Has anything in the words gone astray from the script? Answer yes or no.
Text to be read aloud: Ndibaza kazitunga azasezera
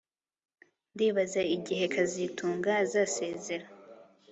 yes